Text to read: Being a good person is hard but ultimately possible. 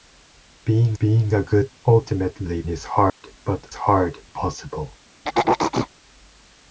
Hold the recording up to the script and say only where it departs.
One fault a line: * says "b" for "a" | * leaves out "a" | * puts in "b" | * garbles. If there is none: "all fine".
* puts in "being"
* says "ultimately" for "person"
* says "hard" for "ultimately"